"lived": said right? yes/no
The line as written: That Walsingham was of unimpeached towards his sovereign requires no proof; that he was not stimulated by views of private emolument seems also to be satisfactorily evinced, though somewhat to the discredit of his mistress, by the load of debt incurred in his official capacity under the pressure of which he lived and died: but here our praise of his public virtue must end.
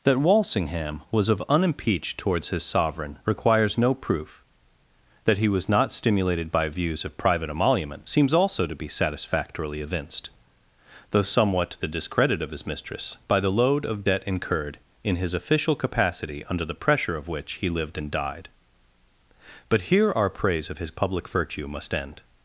yes